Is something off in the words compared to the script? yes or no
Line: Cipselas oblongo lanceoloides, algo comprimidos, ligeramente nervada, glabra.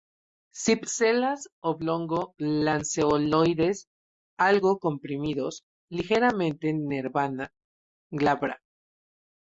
no